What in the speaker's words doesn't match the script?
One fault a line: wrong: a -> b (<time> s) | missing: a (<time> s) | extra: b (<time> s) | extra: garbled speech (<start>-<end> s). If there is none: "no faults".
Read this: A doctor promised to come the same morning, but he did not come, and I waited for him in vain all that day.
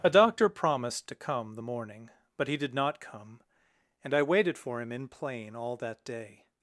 missing: same (1.6 s)
wrong: vain -> plain (5.1 s)